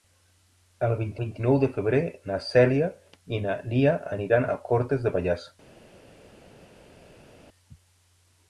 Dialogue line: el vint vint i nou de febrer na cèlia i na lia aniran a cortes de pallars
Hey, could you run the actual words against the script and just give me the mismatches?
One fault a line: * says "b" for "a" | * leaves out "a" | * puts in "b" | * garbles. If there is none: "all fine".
all fine